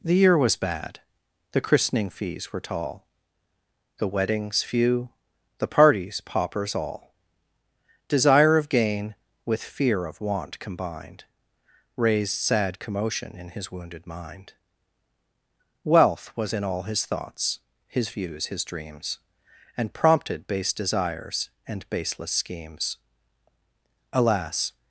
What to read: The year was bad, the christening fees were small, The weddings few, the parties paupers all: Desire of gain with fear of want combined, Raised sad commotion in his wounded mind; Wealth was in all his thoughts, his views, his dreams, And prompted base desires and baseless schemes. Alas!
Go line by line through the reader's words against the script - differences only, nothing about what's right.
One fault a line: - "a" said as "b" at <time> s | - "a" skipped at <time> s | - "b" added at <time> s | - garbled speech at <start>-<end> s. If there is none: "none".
- "small" said as "tall" at 2.6 s